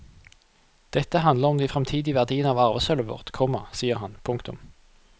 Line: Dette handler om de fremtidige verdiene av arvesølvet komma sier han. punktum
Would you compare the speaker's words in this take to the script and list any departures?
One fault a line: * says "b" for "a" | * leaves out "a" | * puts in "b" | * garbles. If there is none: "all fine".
* puts in "vårt"